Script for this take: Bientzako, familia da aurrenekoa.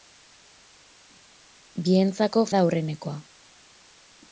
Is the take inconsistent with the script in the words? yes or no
yes